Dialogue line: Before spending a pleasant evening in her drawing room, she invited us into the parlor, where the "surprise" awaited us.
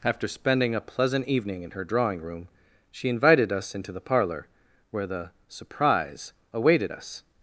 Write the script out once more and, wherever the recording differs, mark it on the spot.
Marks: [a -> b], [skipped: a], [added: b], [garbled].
[Before -> After] spending a pleasant evening in her drawing room, she invited us into the parlor, where the "surprise" awaited us.